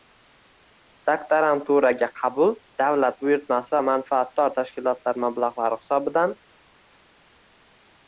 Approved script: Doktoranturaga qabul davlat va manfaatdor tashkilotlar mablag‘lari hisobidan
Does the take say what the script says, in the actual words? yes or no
no